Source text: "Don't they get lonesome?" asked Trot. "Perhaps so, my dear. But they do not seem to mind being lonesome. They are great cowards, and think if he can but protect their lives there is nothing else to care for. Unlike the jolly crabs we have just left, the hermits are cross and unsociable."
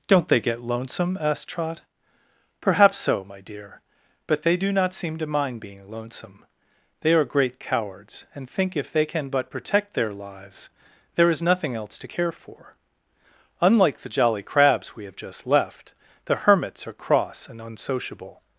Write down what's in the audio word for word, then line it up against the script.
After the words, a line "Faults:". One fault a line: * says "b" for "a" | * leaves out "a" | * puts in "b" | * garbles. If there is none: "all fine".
"Don't they get lonesome?" asked Trot. "Perhaps so, my dear. But they do not seem to mind being lonesome. They are great cowards, and think if they can but protect their lives there is nothing else to care for. Unlike the jolly crabs we have just left, the hermits are cross and unsociable."
Faults:
* says "they" for "he"